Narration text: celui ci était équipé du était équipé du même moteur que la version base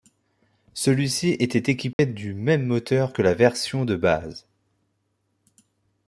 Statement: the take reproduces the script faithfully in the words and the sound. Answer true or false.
false